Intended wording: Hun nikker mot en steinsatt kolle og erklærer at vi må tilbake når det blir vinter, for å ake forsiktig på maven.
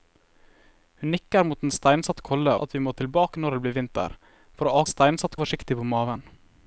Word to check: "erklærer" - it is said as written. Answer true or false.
false